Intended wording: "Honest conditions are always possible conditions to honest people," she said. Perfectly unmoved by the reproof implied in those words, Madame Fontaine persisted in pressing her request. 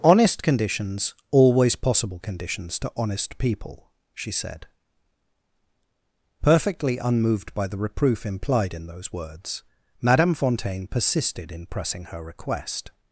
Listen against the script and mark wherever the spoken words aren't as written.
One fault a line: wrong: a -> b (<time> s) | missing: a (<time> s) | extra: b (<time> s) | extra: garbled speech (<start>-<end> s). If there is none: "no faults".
missing: are (1.1 s)